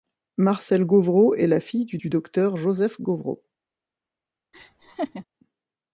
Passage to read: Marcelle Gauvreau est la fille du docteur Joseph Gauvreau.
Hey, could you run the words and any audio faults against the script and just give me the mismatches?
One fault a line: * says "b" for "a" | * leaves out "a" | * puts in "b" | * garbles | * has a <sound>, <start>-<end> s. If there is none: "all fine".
* puts in "du"
* has a laugh, 4.5-5.3 s